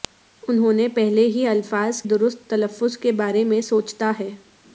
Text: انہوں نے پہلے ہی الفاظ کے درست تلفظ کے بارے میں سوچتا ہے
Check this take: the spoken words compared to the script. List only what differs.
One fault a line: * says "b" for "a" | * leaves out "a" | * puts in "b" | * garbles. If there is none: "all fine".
* leaves out "کے"